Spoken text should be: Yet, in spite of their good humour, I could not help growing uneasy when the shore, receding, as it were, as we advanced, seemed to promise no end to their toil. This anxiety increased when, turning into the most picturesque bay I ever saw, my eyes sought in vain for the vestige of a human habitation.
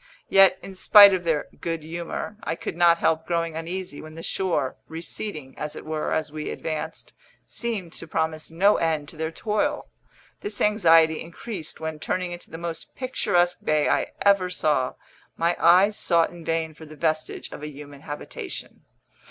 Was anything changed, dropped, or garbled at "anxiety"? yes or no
no